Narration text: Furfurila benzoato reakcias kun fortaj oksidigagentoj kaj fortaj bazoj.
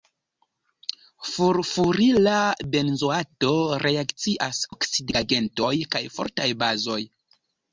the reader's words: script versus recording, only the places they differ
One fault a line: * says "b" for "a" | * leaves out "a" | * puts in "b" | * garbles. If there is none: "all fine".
* leaves out "kun fortaj"